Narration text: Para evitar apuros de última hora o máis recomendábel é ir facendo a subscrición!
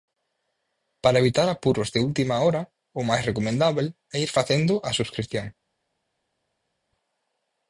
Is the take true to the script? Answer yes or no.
yes